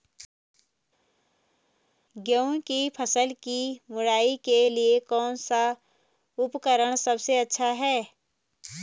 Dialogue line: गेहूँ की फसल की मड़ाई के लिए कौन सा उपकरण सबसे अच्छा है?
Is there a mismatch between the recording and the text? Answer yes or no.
no